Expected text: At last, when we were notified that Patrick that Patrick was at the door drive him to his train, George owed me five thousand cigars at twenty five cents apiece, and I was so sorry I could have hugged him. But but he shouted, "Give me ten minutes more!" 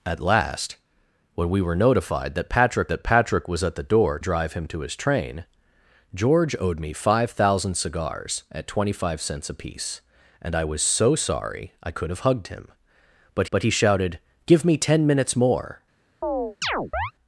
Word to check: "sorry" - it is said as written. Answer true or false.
true